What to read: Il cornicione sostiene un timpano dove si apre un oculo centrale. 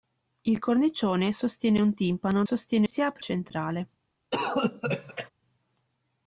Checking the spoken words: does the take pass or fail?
fail